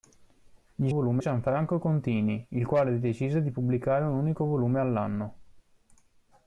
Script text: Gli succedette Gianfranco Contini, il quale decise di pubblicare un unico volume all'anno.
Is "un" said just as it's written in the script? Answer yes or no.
yes